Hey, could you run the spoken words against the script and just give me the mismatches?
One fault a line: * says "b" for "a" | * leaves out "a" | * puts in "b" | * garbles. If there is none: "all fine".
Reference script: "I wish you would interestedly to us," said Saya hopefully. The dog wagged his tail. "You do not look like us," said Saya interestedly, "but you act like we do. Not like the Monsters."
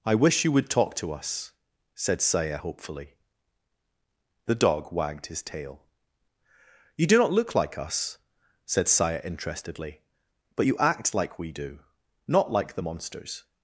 * says "talk" for "interestedly"